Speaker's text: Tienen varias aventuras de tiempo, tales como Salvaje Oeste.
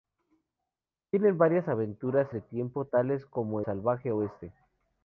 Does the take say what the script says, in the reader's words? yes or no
yes